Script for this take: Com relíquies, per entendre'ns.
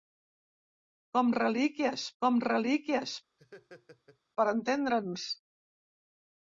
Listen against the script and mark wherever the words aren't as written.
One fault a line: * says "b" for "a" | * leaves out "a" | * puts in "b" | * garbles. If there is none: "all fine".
* puts in "com relíquies"